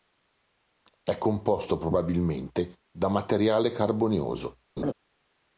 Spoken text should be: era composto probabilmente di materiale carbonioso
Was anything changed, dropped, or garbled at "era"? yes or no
yes